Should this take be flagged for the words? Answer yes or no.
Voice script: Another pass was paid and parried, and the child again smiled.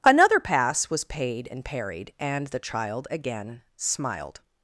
no